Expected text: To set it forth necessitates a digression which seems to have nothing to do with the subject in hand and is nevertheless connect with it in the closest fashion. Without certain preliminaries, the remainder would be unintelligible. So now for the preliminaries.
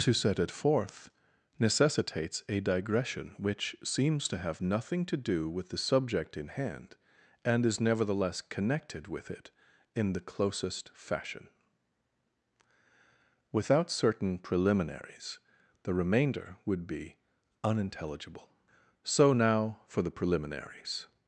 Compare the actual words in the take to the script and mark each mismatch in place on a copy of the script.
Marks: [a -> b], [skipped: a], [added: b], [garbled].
To set it forth necessitates a digression which seems to have nothing to do with the subject in hand and is nevertheless [connect -> connected] with it in the closest fashion. Without certain preliminaries, the remainder would be unintelligible. So now for the preliminaries.